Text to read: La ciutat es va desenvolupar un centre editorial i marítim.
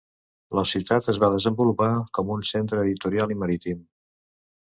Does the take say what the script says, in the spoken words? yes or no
no